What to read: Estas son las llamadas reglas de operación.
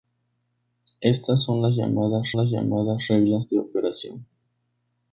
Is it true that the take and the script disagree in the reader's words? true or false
true